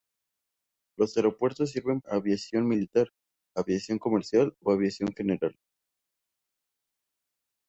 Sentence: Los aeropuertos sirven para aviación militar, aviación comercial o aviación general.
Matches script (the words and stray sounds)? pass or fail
fail